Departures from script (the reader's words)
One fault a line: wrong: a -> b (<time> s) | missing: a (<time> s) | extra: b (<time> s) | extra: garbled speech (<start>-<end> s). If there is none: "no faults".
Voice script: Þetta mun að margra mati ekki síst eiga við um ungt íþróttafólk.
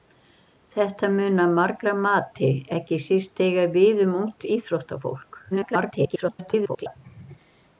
extra: garbled speech (5.5-7.0 s)